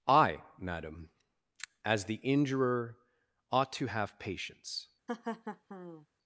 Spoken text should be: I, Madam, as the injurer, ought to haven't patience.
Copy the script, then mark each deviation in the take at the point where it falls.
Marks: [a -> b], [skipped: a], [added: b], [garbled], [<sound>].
I, Madam, as the injurer, ought to [haven't -> have] patience. [laugh]